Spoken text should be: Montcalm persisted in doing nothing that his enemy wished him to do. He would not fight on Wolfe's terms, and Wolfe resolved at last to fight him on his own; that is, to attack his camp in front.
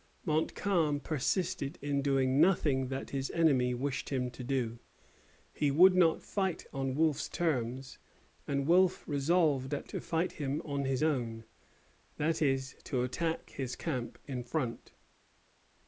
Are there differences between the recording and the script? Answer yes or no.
yes